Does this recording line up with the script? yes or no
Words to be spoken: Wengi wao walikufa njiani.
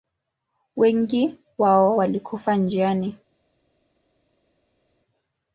yes